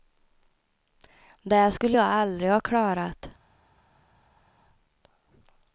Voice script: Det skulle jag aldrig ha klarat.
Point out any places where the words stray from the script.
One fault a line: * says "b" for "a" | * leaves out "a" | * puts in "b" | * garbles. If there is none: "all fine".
all fine